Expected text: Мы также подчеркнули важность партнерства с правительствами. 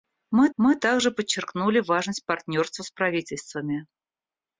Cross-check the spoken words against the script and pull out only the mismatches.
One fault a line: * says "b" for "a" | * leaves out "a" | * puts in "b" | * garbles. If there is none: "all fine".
* puts in "мы"